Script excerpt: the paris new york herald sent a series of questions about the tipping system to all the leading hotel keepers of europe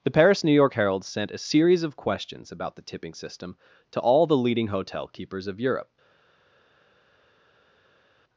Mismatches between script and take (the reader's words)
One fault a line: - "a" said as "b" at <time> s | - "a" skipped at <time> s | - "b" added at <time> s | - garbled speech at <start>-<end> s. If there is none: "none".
none